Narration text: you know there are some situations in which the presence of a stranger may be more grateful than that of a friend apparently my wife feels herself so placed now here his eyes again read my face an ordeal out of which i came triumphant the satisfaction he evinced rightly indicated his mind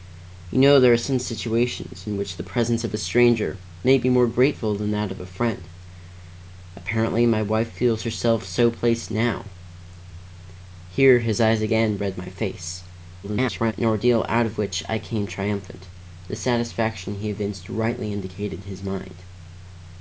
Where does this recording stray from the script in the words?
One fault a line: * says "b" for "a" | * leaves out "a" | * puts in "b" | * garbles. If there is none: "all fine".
* garbles